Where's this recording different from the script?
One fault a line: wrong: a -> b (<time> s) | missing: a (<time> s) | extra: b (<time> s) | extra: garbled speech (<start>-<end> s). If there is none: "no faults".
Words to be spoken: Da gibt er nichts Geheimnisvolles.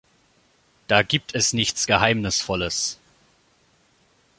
wrong: er -> es (1.4 s)